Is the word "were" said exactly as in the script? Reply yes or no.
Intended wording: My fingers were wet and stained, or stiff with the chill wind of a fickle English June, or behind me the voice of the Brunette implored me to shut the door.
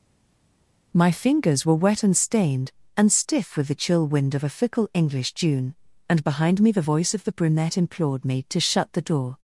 yes